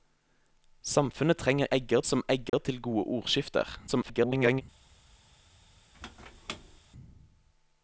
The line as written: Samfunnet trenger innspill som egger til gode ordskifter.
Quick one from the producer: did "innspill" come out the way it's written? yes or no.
no